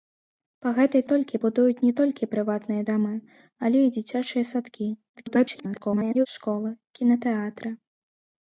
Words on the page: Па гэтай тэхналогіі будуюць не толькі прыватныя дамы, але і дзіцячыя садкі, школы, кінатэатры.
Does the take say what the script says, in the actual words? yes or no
no